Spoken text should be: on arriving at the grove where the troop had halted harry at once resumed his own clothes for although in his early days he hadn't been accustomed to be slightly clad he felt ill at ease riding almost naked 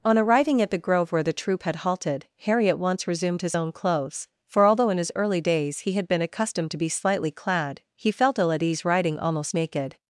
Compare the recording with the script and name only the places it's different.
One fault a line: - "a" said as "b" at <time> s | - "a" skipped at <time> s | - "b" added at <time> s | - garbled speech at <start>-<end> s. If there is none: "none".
- "hadn't" said as "had" at 5.9 s